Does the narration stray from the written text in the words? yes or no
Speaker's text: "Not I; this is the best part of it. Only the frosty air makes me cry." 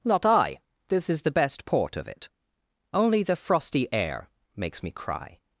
yes